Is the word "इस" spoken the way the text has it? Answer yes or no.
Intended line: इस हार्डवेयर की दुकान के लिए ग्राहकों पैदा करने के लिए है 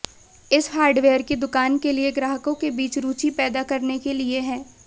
yes